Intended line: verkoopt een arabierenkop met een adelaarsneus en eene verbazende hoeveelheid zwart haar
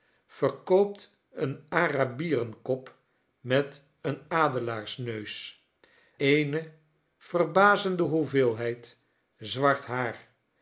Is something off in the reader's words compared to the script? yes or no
yes